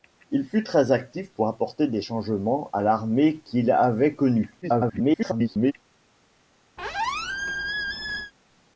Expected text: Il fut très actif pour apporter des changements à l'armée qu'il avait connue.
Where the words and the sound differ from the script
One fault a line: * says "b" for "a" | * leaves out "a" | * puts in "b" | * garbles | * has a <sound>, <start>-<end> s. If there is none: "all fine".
* garbles
* has a squeak, 6.8-8.3 s